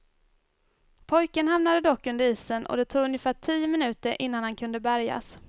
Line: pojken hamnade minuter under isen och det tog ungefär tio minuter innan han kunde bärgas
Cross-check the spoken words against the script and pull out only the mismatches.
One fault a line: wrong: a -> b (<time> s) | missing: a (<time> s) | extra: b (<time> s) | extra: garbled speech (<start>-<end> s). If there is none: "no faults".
wrong: minuter -> dock (1.8 s)